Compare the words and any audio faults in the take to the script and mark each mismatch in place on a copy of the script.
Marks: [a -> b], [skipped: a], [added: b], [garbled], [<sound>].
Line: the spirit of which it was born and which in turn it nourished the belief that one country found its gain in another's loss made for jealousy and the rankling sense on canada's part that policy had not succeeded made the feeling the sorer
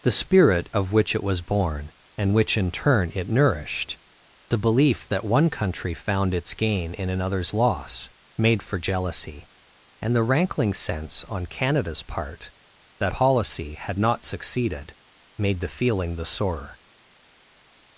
the spirit of which it was born and which in turn it nourished the belief that one country found its gain in another's loss made for jealousy and the rankling sense on canada's part that policy had not succeeded made the feeling the sorer